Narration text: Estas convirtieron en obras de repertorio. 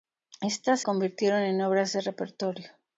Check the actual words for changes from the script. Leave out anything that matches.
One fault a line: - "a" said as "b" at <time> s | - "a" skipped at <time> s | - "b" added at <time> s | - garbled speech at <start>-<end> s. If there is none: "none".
none